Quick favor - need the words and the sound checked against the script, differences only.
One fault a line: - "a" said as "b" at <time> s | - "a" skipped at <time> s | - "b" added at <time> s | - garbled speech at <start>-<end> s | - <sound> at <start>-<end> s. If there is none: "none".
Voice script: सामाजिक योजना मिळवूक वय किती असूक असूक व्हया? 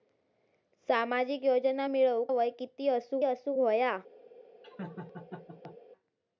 - laugh at 4.6-5.8 s